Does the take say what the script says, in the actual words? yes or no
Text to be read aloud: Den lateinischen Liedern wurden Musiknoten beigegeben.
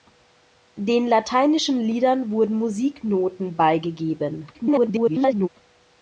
no